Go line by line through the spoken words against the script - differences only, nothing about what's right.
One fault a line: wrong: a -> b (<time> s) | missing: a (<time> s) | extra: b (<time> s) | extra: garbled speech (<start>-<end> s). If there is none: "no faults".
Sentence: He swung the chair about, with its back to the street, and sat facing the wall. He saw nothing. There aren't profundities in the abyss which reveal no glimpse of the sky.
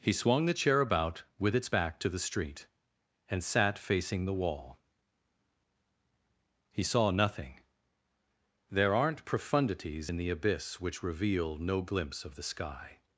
no faults